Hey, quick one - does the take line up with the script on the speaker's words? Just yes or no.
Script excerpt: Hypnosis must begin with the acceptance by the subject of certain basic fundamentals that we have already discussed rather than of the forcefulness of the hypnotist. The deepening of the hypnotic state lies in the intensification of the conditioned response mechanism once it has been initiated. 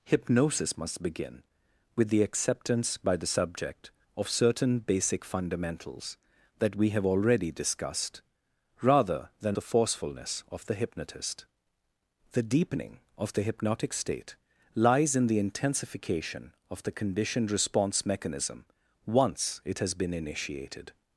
no